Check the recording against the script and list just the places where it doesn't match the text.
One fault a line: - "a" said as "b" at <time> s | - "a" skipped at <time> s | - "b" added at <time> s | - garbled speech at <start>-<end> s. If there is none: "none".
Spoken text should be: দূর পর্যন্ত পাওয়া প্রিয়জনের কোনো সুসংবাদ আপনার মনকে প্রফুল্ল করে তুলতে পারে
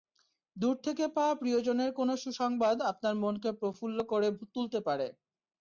- "পর্যন্ত" said as "থেকে" at 0.8 s